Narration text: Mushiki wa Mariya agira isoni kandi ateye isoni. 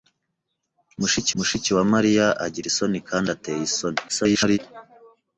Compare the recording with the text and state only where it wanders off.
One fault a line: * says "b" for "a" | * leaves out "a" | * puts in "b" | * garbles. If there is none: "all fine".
* puts in "mushiki"
* garbles